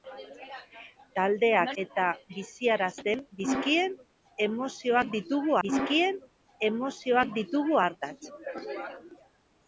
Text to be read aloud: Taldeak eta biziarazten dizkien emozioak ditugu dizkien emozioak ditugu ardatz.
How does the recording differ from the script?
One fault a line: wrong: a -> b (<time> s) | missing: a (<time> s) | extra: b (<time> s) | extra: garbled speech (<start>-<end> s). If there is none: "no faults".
no faults